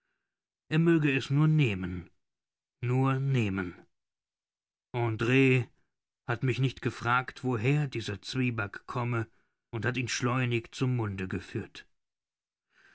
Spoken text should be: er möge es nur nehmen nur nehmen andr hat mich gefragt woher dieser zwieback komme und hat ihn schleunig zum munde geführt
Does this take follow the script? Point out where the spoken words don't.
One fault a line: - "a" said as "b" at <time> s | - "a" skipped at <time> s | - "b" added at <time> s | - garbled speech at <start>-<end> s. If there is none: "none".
- "nicht" added at 6.6 s